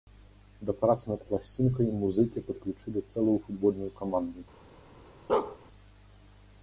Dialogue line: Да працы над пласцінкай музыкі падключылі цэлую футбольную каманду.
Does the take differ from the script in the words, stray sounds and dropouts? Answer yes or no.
yes